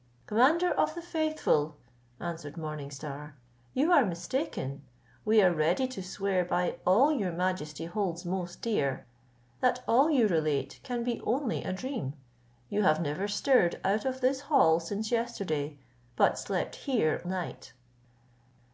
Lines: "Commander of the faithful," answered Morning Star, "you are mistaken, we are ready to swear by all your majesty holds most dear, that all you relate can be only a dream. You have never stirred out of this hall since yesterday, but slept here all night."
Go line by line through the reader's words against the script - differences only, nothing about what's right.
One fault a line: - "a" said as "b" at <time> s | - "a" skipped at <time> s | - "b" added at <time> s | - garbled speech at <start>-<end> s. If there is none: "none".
- "all" skipped at 17.2 s